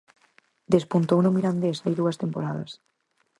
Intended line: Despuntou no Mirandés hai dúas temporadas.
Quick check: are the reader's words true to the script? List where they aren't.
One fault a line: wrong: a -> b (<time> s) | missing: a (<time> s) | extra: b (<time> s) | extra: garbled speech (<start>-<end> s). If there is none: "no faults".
no faults